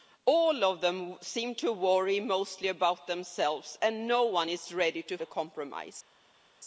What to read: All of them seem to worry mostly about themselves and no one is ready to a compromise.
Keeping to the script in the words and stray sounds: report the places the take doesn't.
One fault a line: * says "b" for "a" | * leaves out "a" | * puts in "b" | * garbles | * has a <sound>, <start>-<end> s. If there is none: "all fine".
all fine